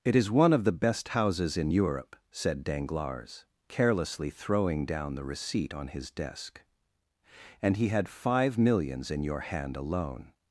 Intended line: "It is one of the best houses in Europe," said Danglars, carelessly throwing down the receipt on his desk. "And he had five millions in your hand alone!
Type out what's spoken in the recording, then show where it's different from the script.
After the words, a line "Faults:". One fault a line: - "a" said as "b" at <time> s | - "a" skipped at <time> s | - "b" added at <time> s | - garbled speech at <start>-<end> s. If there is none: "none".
"It is one of the best houses in Europe," said Danglars, carelessly throwing down the receipt on his desk. "And he had five millions in your hand alone!
Faults:
none